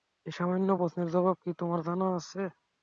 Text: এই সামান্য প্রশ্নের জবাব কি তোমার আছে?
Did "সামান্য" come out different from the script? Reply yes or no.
no